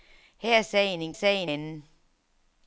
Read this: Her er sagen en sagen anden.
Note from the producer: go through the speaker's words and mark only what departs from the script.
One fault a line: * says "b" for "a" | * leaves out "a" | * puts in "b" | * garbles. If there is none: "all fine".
all fine